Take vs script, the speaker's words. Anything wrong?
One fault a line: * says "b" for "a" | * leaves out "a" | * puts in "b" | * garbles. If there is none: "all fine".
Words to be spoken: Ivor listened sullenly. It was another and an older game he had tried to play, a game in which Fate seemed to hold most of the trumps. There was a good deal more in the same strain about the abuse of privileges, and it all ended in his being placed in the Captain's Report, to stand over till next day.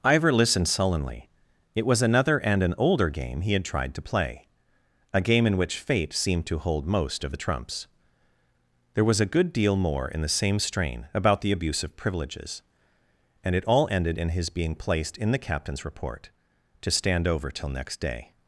all fine